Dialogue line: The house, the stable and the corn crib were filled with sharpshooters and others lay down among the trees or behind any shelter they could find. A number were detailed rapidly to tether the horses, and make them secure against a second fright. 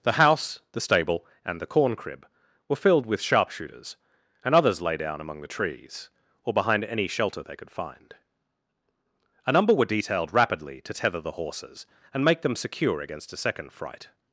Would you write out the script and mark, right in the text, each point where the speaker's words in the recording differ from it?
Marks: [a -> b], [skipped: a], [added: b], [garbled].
The house, the stable and the corn crib were filled with sharpshooters and others lay down among the trees or behind any shelter they could find. A number were detailed rapidly to tether the horses, and make them secure against a second fright.